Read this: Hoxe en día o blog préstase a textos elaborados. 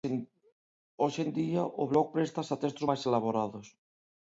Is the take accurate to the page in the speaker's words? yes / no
no